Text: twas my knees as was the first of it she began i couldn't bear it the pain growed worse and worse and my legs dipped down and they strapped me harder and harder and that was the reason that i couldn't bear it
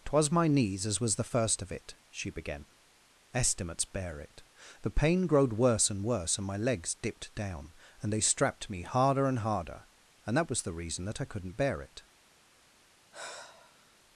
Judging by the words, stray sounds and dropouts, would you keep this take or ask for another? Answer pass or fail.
fail